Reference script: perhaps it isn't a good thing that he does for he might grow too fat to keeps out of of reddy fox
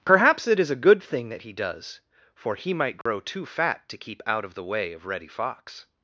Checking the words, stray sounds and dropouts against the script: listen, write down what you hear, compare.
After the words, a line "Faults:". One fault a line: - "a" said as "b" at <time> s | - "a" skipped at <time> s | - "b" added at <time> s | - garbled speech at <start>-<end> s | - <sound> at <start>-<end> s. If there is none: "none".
perhaps it is a good thing that he does for he might grow too fat to keep out of the way of reddy fox
Faults:
- "isn't" said as "is" at 0.6 s
- dropout at 3.0-3.1 s
- "keeps" said as "keep" at 4.0 s
- "the way" added at 4.5 s